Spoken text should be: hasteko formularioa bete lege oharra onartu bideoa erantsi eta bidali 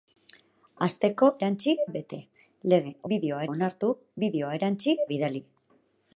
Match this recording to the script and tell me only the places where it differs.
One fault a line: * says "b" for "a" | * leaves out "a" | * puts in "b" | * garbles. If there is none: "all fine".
* says "erantsi" for "formularioa"
* says "bideoa" for "oharra"
* leaves out "eta"